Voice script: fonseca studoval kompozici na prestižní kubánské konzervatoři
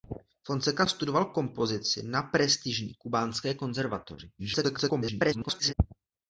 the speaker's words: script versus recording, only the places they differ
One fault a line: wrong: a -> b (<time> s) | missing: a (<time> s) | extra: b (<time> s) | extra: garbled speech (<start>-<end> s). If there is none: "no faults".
extra: garbled speech (4.4-5.7 s)